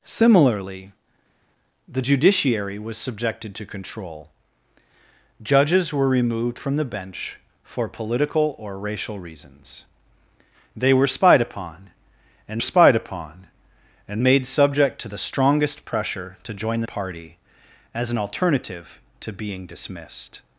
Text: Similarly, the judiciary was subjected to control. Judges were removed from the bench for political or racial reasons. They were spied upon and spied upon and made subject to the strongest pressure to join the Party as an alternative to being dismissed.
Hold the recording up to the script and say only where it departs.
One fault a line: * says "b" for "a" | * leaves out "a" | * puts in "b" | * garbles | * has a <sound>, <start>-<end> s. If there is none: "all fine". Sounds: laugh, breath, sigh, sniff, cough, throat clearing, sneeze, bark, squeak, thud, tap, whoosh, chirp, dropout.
all fine